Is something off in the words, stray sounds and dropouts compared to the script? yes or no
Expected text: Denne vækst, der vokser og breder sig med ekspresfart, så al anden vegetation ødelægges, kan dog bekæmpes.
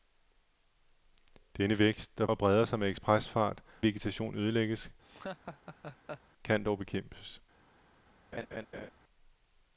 yes